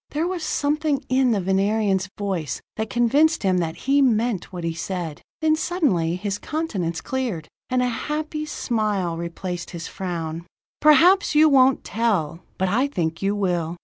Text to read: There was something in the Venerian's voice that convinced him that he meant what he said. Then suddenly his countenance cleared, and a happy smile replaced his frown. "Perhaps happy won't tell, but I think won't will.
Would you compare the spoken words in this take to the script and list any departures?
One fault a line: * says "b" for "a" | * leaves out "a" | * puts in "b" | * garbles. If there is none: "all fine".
* says "you" for "happy"
* says "you" for "won't"